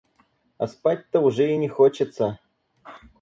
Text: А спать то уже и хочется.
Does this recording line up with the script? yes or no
no